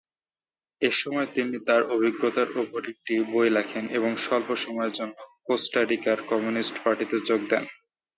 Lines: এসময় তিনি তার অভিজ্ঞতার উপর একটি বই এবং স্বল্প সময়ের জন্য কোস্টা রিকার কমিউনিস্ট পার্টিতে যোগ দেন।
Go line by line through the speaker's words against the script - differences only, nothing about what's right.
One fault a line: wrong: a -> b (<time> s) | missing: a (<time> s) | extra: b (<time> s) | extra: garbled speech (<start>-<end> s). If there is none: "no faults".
extra: লেখেন (3.5 s)